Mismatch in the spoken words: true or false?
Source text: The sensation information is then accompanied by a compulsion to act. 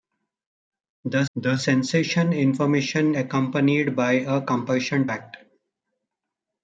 true